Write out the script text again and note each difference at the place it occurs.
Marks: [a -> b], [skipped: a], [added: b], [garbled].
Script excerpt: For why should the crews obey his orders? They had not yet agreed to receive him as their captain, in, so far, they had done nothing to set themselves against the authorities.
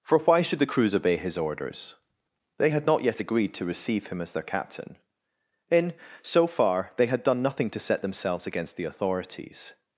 For why should the crews obey his orders? They had not yet agreed to receive him as their captain, in, so far, they had done nothing to set themselves against the authorities.